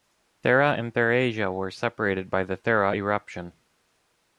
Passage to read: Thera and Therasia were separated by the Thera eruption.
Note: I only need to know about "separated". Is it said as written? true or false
true